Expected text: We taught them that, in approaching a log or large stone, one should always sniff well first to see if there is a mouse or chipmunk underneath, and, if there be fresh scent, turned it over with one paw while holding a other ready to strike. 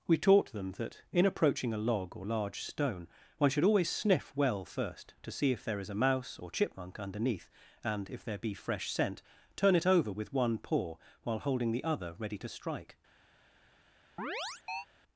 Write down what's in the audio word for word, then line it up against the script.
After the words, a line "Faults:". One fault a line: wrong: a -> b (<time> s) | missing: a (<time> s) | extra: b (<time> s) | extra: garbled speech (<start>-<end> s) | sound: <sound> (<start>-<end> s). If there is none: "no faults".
We taught them that, in approaching a log or large stone, one should always sniff well first to see if there is a mouse or chipmunk underneath, and, if there be fresh scent, turn it over with one paw while holding the other ready to strike.
Faults:
wrong: turned -> turn (9.6 s)
wrong: a -> the (11.7 s)
sound: chirp (14.2-14.9 s)